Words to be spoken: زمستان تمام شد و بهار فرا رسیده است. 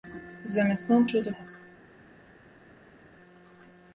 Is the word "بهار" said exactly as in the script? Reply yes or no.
no